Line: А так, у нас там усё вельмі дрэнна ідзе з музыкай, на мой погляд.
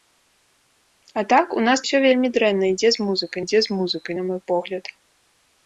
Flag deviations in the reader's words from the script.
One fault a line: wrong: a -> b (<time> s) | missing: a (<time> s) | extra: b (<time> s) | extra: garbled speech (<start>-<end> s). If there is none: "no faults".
missing: там (1.9 s)
extra: ідзе з музыкай (3.4 s)